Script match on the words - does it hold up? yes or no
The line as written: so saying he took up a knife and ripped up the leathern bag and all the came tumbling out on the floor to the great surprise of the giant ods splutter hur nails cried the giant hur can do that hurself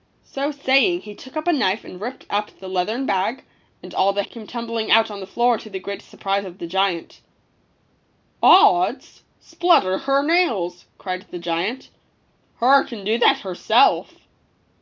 yes